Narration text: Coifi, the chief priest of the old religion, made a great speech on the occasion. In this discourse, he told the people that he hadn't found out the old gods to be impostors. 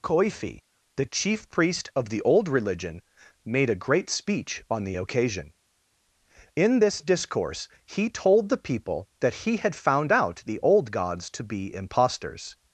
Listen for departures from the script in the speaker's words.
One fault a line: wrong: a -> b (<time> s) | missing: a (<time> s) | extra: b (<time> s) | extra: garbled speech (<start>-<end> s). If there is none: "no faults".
wrong: hadn't -> had (9.6 s)